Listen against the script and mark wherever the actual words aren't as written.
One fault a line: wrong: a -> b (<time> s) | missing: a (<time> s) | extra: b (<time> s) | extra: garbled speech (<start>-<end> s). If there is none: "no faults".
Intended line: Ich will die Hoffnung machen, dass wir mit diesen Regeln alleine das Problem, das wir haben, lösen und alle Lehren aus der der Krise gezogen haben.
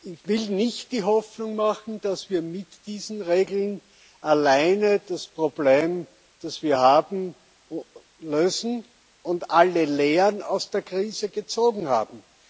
extra: nicht (0.5 s)
missing: der (10.8 s)